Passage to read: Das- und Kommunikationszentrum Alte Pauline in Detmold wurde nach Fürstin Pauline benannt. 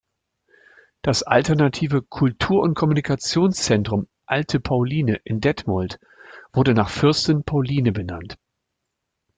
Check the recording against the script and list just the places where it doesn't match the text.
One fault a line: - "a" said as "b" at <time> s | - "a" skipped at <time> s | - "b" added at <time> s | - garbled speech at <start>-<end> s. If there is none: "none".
- "alternative Kultur" added at 1.2 s